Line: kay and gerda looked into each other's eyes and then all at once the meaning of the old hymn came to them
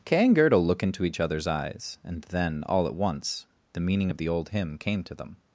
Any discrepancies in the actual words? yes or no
yes